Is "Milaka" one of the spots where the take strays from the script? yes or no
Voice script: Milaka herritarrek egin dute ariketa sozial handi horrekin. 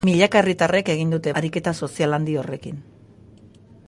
no